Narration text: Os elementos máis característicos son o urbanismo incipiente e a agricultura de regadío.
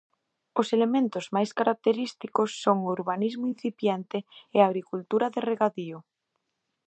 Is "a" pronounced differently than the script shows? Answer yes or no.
no